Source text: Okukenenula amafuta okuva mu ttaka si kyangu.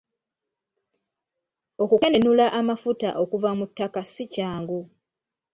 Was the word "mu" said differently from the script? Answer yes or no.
no